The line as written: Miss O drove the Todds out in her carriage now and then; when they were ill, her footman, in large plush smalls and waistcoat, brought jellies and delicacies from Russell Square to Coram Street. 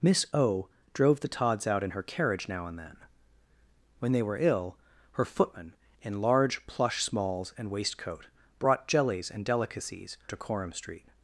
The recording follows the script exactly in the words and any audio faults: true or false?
false